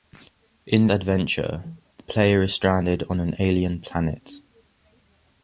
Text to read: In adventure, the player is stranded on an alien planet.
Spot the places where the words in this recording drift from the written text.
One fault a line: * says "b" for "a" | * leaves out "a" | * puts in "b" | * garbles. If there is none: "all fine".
all fine